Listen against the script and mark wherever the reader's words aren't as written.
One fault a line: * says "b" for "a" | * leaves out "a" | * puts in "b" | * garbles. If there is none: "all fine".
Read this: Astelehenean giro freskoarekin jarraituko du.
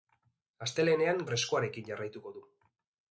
* leaves out "giro"